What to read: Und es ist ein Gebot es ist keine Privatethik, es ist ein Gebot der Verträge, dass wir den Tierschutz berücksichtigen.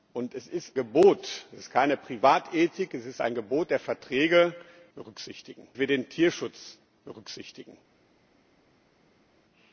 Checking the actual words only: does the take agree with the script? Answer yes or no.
no